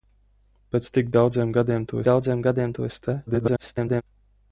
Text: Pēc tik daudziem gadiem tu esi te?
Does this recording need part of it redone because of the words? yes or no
yes